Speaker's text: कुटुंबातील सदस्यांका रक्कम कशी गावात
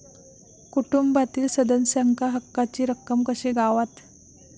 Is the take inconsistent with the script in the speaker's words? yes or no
yes